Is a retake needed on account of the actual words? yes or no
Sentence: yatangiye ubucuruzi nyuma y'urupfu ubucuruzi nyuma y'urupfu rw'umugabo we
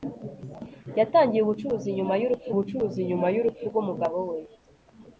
no